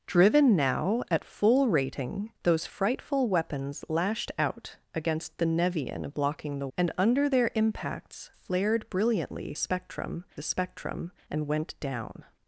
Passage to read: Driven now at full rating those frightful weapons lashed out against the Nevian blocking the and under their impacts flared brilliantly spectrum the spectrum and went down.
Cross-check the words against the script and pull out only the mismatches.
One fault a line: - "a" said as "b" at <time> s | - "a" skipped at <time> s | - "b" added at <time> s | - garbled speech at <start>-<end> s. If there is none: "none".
none